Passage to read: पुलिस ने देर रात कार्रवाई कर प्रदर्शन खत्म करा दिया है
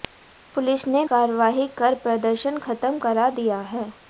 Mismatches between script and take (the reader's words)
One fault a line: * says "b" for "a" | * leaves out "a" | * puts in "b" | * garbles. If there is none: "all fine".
* leaves out "देर रात"